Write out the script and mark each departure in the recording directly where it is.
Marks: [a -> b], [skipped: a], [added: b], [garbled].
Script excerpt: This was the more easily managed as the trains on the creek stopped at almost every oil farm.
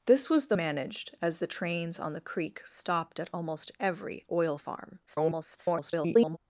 This was the [skipped: more easily] managed as the trains on the creek stopped at almost every oil farm. [garbled]